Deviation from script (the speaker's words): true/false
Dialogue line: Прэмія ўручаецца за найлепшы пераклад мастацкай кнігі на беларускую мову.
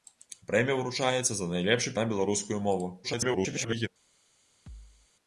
true